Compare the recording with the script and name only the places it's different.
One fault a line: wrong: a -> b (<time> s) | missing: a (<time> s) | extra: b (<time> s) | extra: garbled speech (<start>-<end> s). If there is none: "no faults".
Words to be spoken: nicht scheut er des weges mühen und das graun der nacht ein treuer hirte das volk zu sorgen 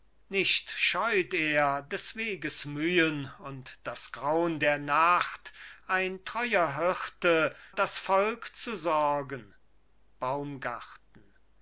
no faults